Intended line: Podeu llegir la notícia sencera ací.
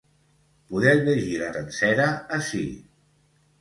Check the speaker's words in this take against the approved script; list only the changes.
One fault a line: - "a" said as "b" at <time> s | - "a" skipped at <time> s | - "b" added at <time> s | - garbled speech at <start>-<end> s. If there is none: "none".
- "notícia" skipped at 1.5 s